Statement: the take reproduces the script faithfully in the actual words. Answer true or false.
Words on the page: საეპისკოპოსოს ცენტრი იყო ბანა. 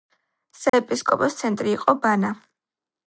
true